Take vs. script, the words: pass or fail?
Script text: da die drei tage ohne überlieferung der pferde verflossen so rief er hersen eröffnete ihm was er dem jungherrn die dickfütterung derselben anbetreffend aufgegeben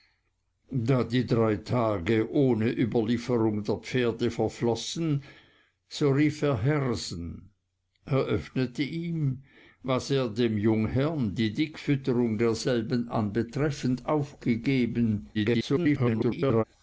fail